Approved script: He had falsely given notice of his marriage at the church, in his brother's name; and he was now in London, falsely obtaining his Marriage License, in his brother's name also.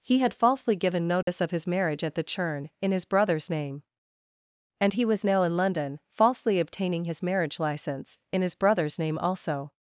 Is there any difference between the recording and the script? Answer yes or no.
yes